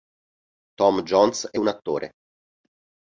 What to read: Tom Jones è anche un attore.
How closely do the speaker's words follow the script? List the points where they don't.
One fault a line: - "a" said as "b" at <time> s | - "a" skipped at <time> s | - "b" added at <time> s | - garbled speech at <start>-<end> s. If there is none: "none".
- "anche" skipped at 1.6 s